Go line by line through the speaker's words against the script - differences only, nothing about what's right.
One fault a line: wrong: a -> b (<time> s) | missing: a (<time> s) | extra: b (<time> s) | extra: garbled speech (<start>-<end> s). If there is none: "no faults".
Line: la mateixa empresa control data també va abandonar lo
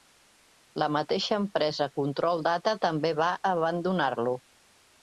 no faults